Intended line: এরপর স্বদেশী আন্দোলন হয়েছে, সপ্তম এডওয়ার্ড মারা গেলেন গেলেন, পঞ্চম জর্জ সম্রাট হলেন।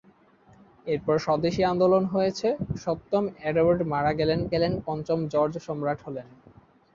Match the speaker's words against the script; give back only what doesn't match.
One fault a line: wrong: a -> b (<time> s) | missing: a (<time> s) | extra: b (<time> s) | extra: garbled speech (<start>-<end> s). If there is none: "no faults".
no faults